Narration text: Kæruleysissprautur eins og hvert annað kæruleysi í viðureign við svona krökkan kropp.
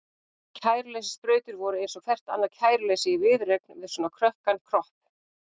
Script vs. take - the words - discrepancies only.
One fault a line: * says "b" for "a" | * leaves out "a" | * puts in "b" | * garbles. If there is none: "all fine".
* puts in "voru"